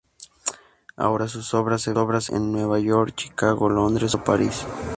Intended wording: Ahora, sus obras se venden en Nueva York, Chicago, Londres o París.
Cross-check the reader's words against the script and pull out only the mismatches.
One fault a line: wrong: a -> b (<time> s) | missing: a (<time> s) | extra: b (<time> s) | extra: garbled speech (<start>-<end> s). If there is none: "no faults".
wrong: venden -> obras (2.0 s)